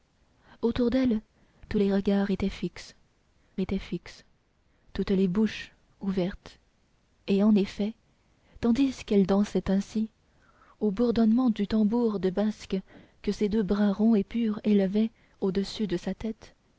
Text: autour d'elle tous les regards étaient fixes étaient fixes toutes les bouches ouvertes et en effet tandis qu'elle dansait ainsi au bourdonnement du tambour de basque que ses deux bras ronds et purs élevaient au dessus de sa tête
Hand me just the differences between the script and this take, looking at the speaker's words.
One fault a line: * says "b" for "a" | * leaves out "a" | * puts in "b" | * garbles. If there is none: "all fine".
all fine